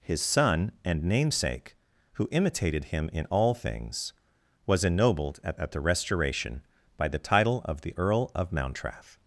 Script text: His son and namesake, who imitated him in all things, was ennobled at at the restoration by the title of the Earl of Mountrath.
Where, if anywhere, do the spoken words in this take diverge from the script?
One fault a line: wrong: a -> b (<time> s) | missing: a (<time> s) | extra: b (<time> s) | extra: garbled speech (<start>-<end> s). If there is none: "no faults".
no faults